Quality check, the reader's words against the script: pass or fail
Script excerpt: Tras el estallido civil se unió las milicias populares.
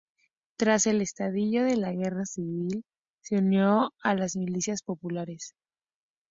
fail